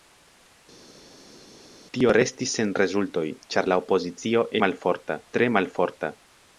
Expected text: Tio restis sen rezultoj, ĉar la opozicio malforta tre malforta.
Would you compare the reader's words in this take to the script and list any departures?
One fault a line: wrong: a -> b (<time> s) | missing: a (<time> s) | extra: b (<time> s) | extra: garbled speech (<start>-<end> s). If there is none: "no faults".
no faults